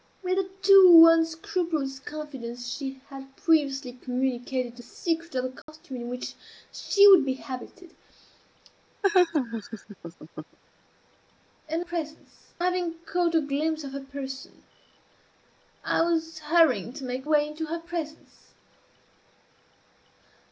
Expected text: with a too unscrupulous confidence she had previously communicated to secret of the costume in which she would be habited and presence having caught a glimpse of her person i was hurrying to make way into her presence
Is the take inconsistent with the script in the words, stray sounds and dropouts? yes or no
yes